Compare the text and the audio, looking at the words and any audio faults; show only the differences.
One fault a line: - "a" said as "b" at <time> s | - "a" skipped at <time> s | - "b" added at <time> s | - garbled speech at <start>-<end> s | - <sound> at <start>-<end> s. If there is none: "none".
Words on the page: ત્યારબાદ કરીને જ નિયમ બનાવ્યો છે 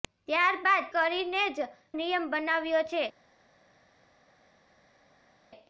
none